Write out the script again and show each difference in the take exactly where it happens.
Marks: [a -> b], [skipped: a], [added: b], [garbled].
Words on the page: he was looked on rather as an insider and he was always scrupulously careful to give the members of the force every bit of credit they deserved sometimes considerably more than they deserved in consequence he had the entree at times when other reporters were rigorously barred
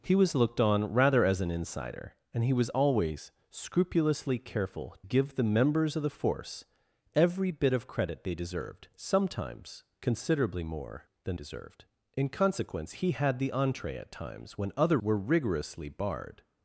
he was looked on rather as an insider and he was always scrupulously careful [skipped: to] give the members of the force every bit of credit they deserved sometimes considerably more than [skipped: they] deserved in consequence he had the entree at times when other [skipped: reporters] were rigorously barred